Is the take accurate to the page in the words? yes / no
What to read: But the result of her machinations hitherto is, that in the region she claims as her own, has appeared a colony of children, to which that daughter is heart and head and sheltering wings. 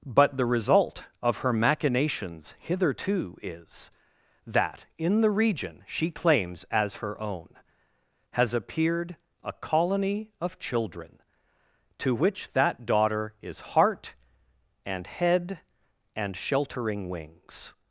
yes